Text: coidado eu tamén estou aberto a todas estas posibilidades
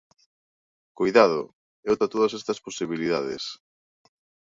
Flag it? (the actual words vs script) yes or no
yes